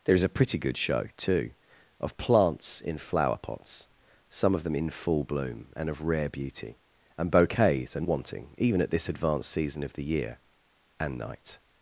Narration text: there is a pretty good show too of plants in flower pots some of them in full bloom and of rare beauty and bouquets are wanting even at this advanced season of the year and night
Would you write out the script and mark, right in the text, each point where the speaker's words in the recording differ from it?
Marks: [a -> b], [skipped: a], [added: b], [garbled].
there is a pretty good show too of plants in flower pots some of them in full bloom and of rare beauty and bouquets are wanting even at this advanced season of the year and night